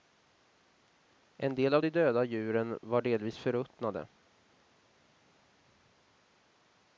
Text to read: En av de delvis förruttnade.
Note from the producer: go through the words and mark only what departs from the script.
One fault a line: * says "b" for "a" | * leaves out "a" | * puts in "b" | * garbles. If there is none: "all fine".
* puts in "del"
* puts in "döda djuren var"